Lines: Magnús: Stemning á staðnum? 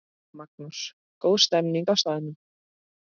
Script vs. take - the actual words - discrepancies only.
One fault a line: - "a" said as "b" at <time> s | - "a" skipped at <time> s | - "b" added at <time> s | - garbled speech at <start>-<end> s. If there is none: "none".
- "Góð" added at 1.2 s